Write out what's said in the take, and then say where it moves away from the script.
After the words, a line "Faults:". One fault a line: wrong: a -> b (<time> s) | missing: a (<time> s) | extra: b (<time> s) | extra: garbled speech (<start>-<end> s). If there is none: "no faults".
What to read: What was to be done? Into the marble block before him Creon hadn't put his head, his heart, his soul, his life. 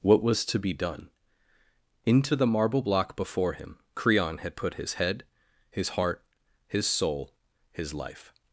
What was to be done? Into the marble block before him Creon had put his head, his heart, his soul, his life.
Faults:
wrong: hadn't -> had (4.4 s)